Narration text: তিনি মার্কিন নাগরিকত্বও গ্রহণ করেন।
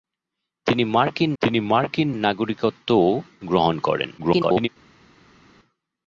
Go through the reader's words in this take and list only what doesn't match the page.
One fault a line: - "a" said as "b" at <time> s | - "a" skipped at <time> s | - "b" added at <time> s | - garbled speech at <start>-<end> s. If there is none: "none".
- "তিনি মার্কিন" added at 1.4 s
- garbled speech at 4.2-4.7 s